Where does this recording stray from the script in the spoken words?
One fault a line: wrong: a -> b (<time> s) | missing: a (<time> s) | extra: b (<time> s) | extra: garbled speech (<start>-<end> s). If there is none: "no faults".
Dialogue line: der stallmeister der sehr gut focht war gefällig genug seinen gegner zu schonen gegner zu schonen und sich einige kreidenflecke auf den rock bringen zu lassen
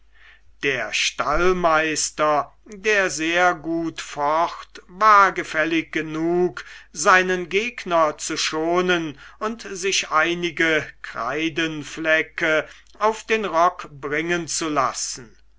missing: gegner zu schonen (9.2 s)